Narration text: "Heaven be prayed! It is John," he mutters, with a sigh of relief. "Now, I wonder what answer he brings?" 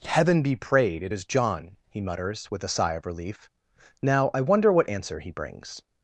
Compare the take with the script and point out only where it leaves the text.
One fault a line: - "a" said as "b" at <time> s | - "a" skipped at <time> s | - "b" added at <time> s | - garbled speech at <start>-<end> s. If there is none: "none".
none